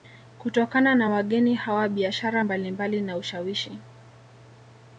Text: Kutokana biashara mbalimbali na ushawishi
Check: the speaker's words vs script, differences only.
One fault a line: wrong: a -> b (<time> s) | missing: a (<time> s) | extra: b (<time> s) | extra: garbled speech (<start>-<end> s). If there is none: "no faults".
extra: na wageni hawa (0.9 s)